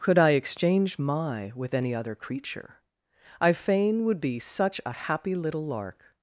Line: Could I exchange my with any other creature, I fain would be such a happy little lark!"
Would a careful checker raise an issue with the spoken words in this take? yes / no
no